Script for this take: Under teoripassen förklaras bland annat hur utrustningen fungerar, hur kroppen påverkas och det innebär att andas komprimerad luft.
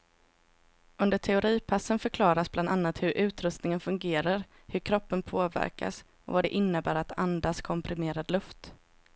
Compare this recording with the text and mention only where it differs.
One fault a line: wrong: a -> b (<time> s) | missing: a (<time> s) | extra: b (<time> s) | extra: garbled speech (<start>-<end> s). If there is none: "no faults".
extra: vad (6.3 s)